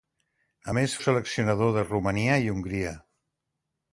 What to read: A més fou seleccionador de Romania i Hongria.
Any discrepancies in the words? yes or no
yes